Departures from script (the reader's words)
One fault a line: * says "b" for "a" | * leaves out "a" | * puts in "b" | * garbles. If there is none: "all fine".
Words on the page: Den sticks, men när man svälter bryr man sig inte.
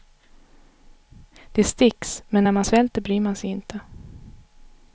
* says "Det" for "Den"